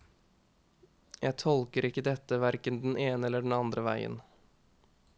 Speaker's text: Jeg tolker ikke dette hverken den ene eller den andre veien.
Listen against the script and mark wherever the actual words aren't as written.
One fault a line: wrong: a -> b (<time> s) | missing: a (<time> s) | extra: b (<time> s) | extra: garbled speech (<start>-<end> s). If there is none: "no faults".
no faults